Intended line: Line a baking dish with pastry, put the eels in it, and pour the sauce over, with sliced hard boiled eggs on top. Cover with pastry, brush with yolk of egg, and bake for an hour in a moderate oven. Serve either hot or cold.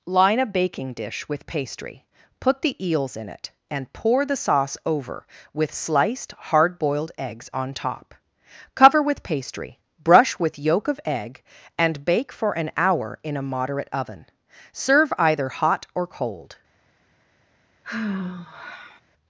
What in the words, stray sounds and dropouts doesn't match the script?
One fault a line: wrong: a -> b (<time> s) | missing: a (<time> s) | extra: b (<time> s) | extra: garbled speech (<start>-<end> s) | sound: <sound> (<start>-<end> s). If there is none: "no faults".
sound: sigh (17.8-19.0 s)